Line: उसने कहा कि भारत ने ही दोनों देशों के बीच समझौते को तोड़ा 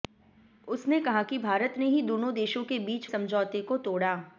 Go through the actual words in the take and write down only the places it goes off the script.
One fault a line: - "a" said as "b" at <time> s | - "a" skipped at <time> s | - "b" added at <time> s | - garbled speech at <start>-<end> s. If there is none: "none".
none